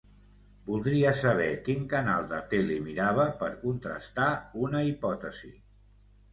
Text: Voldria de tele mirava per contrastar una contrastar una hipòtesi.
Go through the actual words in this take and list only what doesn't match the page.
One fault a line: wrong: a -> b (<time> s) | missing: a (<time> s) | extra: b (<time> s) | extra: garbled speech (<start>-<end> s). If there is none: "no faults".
extra: saber quin canal (1.2 s)
missing: contrastar una (4.8 s)